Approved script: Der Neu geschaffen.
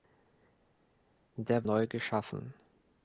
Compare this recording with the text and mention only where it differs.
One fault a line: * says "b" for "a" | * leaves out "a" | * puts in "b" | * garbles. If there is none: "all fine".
all fine